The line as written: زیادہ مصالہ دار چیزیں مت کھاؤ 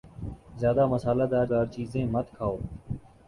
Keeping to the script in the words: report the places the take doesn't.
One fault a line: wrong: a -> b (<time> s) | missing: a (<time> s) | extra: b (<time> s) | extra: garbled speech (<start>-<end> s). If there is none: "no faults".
extra: دار (1.5 s)